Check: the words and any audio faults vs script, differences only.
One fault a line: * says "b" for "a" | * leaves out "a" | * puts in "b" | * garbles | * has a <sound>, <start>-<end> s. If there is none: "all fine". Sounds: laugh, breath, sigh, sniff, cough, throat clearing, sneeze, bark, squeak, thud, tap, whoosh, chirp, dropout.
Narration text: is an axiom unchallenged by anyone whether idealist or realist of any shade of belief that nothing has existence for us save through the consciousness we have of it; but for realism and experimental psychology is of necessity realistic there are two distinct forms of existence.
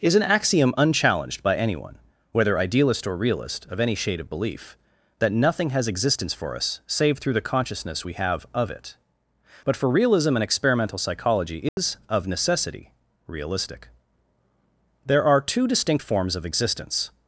* has a dropout, 11.7-11.8 s